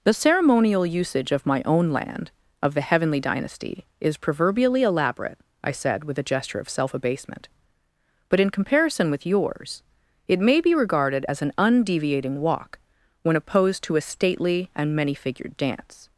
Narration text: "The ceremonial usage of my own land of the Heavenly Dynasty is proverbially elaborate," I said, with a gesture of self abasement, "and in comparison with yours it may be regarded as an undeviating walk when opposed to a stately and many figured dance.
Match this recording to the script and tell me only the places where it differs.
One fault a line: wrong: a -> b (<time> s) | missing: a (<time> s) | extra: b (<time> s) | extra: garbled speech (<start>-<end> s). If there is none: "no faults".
wrong: and -> but (8.3 s)